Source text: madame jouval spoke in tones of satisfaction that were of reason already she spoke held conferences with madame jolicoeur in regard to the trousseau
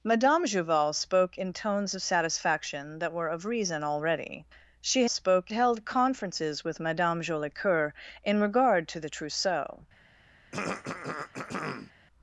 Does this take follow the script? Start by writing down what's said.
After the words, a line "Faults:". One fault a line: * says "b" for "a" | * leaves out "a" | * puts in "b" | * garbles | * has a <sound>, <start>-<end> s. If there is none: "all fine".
madame jouval spoke in tones of satisfaction that were of reason already she spoke held conferences with madame jolicoeur in regard to the trousseau
Faults:
* has a throat clearing, 10.5-11.9 s